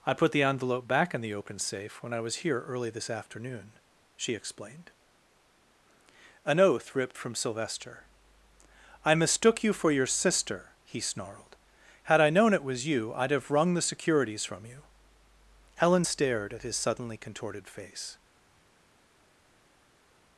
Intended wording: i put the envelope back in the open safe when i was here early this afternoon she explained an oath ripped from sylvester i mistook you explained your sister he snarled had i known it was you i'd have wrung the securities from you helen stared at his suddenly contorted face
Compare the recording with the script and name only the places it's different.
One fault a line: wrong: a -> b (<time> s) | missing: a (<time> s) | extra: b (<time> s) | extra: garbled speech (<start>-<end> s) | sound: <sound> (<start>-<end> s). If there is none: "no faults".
wrong: explained -> for (9.7 s)